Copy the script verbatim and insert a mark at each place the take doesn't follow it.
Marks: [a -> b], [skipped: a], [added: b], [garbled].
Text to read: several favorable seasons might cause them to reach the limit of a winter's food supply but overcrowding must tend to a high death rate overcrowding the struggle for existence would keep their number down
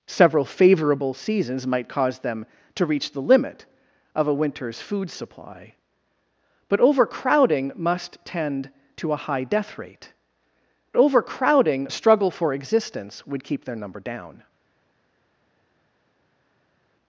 several favorable seasons might cause them to reach the limit of a winter's food supply but overcrowding must tend to a high death rate overcrowding the struggle for existence would keep their number down